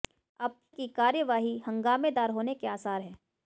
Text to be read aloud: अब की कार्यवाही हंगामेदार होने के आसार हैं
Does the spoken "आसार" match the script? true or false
true